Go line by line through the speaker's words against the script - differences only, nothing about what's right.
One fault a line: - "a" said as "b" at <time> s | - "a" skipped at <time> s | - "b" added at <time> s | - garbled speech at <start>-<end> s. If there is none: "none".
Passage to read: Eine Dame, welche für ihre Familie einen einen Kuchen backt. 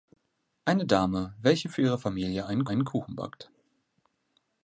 none